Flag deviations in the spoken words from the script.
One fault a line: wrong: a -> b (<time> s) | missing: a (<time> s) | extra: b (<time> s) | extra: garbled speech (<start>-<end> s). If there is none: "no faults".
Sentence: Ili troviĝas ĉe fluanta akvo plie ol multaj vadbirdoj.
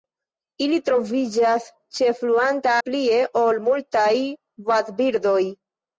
missing: akvo (2.8 s)